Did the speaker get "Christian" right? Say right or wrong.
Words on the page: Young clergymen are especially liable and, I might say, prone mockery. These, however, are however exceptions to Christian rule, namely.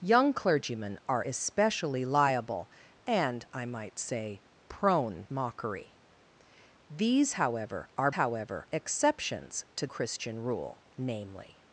right